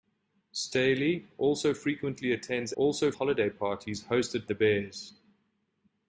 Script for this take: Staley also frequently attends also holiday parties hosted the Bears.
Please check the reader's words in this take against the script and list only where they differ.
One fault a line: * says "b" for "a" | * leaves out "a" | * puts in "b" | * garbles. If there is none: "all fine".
all fine